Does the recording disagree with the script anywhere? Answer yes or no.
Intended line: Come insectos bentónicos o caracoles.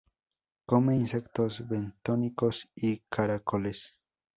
yes